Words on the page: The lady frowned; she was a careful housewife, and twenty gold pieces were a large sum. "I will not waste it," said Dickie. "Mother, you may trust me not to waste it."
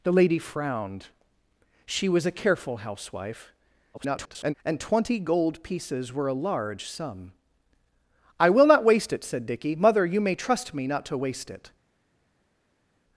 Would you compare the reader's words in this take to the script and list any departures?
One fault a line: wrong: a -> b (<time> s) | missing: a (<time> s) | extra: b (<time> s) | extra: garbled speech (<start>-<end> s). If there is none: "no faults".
extra: garbled speech (3.9-4.5 s)